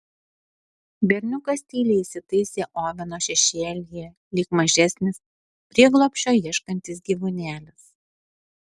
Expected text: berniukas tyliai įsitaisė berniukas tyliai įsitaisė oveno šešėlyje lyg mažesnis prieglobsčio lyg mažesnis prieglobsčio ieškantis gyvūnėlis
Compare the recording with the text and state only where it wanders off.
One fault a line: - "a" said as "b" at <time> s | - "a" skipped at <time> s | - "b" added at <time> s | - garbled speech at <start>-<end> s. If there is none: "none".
- "berniukas tyliai įsitaisė" skipped at 2.6 s
- "lyg mažesnis prieglobsčio" skipped at 6.4 s